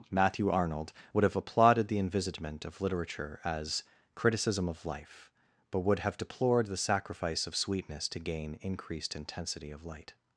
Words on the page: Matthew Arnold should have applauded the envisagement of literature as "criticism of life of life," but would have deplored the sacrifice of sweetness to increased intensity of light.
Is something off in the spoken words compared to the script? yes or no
yes